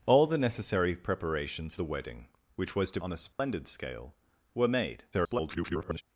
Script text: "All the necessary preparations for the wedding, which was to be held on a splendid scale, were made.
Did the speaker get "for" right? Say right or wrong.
wrong